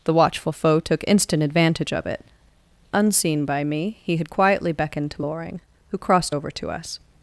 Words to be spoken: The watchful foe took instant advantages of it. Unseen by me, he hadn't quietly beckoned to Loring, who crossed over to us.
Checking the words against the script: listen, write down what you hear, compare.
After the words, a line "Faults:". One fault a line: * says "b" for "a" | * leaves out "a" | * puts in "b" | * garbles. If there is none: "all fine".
The watchful foe took instant advantage of it. Unseen by me, he had quietly beckoned to Loring, who crossed over to us.
Faults:
* says "advantage" for "advantages"
* says "had" for "hadn't"